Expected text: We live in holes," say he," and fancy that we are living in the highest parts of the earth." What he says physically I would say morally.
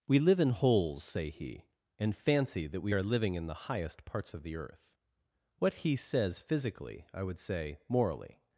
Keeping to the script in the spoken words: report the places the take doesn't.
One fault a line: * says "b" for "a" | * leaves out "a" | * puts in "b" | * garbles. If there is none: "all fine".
all fine